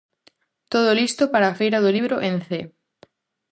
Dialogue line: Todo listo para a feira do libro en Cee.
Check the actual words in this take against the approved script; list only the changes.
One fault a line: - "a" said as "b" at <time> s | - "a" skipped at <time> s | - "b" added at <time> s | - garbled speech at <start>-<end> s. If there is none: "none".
none